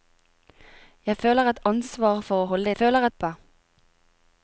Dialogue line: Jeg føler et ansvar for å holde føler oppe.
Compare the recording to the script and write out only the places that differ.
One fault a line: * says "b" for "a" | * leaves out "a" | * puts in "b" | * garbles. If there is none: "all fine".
all fine